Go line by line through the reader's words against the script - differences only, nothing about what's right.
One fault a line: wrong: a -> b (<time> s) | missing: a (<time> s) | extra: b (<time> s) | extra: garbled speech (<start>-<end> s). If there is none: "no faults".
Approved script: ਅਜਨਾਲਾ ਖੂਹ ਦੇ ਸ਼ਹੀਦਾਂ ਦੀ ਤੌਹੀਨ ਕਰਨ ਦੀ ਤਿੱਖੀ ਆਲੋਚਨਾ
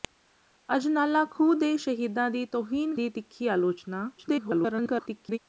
missing: ਕਰਨ (3.0 s)
extra: garbled speech (4.2-5.4 s)